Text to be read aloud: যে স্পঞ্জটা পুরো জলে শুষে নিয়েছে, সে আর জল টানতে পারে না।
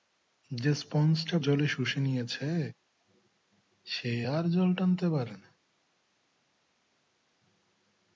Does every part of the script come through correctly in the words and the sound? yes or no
no